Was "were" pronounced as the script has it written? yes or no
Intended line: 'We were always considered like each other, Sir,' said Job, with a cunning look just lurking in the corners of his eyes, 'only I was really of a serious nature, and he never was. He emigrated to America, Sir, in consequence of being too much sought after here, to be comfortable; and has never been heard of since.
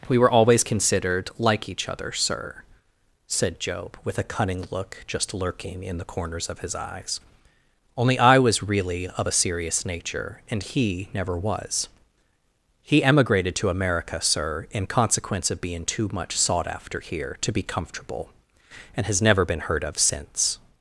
yes